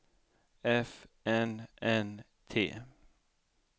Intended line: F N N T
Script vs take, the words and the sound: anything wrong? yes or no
no